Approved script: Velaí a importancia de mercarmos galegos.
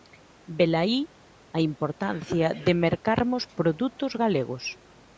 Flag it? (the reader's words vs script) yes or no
yes